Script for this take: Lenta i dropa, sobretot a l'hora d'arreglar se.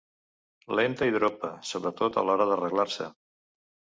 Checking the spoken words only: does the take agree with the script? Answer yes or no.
yes